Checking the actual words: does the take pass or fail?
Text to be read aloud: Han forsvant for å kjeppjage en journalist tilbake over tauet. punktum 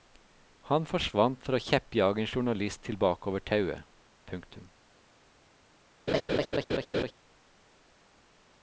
pass